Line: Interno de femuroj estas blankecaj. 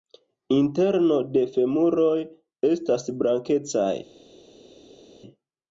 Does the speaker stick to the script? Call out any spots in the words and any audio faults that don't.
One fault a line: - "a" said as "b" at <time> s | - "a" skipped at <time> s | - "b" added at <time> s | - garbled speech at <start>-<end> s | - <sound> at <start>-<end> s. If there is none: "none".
none